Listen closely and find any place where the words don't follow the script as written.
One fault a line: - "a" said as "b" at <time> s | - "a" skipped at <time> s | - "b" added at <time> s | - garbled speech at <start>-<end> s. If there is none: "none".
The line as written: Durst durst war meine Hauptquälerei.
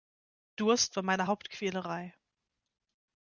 - "durst" skipped at 0.9 s